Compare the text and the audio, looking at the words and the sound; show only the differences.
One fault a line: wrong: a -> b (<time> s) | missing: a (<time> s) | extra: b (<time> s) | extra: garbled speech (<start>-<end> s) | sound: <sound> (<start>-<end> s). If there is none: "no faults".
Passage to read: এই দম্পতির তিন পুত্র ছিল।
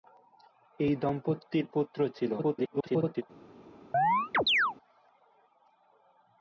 missing: তিন (1.6 s)
extra: garbled speech (2.4-3.2 s)
sound: chirp (3.9-4.8 s)